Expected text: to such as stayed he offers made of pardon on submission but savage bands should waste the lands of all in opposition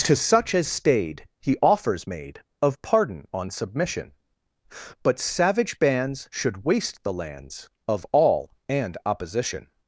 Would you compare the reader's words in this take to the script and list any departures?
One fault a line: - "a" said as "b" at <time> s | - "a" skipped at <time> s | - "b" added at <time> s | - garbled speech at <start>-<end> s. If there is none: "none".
- "in" said as "and" at 8.7 s